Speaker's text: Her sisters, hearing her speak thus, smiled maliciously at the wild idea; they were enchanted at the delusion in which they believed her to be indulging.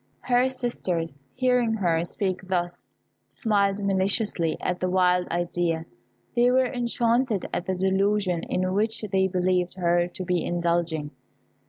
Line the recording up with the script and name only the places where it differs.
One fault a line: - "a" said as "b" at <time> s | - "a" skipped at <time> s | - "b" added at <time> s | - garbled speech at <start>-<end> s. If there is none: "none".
none